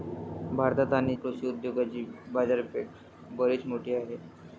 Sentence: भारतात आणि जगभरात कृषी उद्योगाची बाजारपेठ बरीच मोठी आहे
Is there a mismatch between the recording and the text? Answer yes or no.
yes